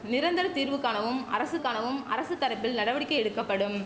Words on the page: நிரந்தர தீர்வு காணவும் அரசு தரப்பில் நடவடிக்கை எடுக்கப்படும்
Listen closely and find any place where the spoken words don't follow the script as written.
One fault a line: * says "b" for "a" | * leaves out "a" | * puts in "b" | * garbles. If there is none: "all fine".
* puts in "காணவும் அரசு"